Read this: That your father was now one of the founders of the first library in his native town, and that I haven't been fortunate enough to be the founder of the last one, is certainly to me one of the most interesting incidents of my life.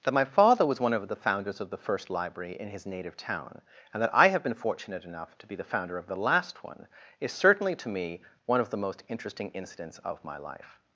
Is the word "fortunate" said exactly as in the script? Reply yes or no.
yes